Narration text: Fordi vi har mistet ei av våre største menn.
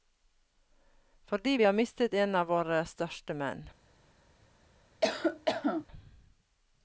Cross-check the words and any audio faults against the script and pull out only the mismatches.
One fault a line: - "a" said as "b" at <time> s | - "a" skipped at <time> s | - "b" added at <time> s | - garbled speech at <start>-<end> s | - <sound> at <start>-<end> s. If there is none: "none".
- "ei" said as "en" at 2.1 s
- cough at 5.0-5.9 s